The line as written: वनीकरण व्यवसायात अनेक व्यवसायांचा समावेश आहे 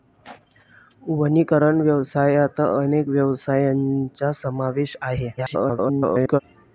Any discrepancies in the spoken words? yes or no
yes